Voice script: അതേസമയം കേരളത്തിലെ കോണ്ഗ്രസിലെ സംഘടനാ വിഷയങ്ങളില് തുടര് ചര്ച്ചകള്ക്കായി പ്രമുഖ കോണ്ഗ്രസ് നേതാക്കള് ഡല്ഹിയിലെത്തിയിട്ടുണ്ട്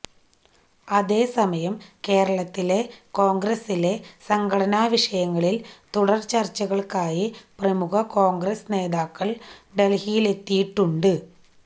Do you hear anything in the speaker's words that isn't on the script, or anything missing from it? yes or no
no